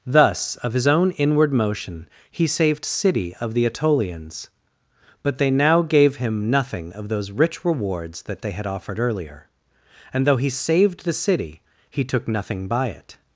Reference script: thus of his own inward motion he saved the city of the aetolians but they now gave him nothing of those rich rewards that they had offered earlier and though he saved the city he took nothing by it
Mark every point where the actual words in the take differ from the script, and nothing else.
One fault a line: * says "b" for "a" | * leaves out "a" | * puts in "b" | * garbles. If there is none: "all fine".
* leaves out "the"